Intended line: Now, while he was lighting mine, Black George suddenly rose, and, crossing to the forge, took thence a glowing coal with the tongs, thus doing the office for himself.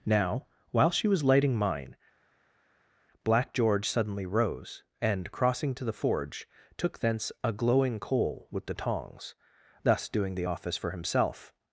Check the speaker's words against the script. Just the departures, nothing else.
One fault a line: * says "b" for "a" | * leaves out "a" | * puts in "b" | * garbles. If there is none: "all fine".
* says "she" for "he"